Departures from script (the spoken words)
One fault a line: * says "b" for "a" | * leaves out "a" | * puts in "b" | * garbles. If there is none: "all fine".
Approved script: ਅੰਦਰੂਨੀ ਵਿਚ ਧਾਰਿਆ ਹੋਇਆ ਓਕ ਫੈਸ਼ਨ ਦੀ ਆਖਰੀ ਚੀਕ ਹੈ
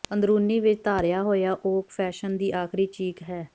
all fine